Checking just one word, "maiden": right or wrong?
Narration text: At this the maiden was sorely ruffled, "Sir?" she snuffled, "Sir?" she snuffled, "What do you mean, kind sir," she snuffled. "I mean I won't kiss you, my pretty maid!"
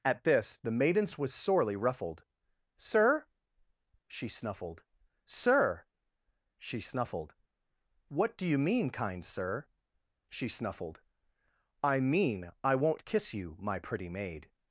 wrong